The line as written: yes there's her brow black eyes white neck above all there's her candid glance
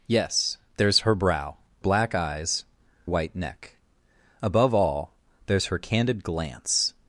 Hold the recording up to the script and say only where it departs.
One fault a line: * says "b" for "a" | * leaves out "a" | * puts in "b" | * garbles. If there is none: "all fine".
all fine